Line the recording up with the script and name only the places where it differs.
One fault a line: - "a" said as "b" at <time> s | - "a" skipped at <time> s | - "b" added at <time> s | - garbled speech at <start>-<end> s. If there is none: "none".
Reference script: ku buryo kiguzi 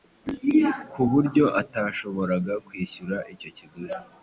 - "atashoboraga kwishyura icyo" added at 1.6 s